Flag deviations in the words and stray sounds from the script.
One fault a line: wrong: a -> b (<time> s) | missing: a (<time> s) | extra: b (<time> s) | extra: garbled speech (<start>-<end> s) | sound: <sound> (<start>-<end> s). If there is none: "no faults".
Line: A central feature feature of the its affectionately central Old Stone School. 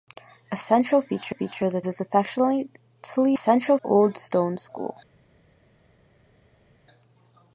no faults